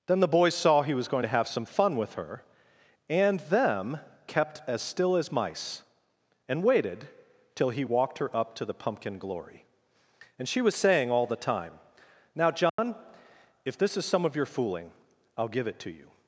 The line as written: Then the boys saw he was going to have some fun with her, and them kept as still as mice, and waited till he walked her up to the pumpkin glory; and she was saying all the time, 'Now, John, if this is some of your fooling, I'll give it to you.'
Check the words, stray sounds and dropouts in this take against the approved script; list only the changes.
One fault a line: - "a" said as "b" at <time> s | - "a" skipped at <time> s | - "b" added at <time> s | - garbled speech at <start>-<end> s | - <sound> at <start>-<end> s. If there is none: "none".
- dropout at 12.7-12.8 s